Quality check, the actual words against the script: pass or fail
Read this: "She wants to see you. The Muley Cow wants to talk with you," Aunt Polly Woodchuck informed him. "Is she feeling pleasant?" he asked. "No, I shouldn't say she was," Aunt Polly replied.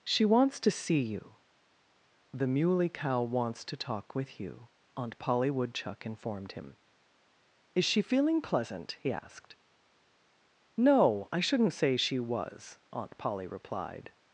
pass